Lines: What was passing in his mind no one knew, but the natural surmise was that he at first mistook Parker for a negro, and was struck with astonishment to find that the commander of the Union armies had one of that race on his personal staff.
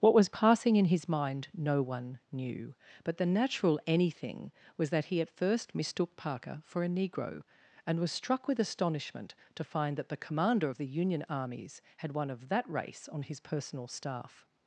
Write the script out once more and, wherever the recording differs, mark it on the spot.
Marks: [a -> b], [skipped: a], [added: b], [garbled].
What was passing in his mind no one knew, but the natural [surmise -> anything] was that he at first mistook Parker for a negro, and was struck with astonishment to find that the commander of the Union armies had one of that race on his personal staff.